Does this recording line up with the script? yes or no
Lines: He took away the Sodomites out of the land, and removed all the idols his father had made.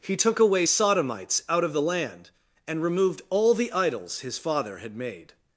no